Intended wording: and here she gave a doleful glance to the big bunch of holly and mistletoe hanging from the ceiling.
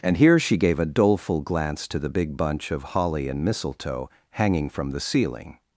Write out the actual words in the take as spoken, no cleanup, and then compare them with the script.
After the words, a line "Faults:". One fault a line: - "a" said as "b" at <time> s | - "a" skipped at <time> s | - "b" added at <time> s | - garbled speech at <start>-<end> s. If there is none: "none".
and here she gave a doleful glance to the big bunch of holly and mistletoe hanging from the ceiling.
Faults:
none